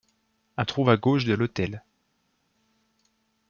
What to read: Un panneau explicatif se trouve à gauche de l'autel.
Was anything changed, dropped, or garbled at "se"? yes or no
yes